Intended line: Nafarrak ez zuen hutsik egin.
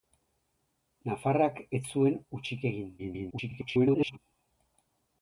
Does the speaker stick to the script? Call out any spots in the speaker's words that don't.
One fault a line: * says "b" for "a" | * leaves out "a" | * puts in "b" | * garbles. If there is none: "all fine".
* garbles